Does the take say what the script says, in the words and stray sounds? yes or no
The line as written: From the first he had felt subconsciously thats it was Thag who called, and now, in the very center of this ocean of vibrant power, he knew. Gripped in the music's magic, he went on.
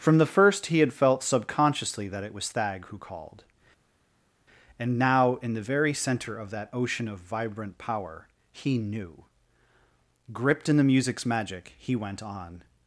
no